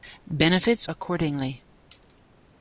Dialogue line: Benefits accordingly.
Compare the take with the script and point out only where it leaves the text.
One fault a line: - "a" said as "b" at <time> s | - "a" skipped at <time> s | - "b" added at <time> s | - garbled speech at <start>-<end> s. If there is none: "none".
none